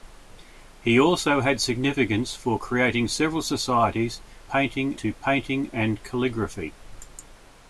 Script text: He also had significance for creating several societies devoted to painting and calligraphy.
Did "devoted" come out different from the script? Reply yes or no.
yes